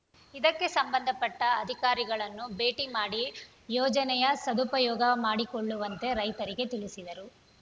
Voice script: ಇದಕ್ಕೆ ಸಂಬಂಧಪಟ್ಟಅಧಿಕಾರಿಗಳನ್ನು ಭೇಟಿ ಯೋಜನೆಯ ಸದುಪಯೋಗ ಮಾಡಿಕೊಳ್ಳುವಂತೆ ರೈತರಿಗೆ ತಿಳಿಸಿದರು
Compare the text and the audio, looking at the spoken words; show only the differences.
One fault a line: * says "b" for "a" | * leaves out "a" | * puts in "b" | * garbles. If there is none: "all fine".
* puts in "ಮಾಡಿ"